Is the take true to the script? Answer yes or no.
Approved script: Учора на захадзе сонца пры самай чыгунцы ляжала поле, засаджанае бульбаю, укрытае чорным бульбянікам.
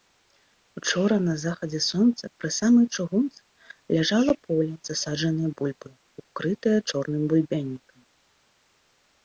yes